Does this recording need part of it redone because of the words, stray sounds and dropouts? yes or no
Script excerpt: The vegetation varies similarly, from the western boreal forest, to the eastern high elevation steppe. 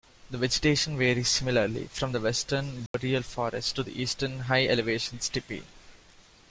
yes